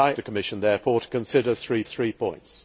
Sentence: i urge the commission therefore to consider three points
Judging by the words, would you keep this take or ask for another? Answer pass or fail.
fail